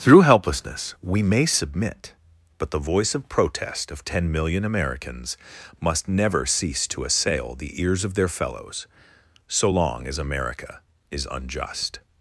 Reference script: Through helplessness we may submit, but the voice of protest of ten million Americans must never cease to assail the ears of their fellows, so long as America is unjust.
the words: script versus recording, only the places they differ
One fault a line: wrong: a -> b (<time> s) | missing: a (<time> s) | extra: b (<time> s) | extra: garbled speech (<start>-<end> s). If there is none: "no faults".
no faults